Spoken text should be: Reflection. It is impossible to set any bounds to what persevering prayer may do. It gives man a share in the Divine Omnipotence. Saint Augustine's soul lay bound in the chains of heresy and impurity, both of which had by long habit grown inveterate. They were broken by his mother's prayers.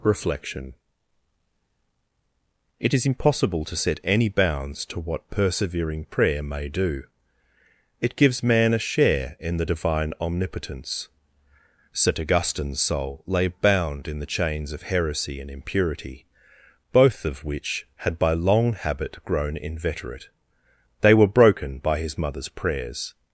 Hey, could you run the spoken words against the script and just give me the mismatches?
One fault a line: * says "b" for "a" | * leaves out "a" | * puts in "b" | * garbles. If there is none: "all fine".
all fine